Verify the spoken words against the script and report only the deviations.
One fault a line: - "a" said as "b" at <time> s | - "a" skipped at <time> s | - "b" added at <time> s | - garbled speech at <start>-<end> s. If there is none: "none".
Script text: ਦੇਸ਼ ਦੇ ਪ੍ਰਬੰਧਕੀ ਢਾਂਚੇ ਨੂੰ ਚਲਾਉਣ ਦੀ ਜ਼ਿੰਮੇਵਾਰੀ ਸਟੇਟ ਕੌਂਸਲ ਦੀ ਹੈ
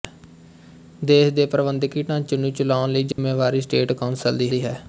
- "ਦੀ" added at 4.5 s